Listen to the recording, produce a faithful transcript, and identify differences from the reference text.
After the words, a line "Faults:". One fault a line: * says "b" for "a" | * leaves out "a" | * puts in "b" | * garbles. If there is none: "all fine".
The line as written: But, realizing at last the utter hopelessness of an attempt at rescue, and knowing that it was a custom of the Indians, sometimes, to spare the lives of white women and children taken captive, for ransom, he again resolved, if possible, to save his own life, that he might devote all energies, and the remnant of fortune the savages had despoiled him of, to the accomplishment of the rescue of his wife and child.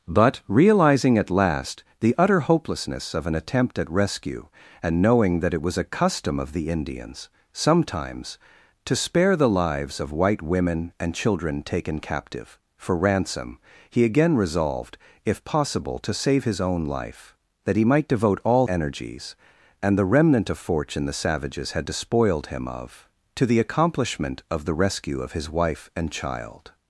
But, realizing at last the utter hopelessness of an attempt at rescue, and knowing that it was a custom of the Indians, sometimes, to spare the lives of white women and children taken captive, for ransom, he again resolved, if possible, to save his own life, that he might devote all energies, and the remnant of fortune the savages had despoiled him of, to the accomplishment of the rescue of his wife and child.
Faults:
all fine